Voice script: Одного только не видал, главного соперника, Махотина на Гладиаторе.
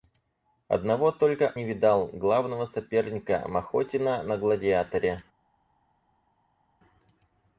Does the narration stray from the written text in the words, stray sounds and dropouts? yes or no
no